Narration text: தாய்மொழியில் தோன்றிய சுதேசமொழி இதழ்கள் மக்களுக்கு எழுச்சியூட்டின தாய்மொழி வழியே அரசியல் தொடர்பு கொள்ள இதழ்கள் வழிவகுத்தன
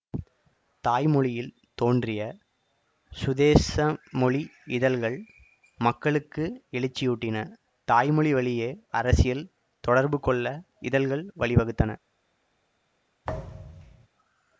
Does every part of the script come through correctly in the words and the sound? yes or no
no